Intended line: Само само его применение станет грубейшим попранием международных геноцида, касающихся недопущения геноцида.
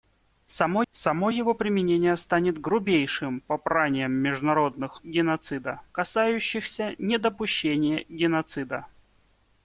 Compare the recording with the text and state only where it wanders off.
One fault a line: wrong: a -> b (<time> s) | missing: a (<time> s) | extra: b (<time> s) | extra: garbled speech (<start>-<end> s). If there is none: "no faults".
no faults